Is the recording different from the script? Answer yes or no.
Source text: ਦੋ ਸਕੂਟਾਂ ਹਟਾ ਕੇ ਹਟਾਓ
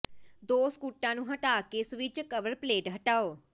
yes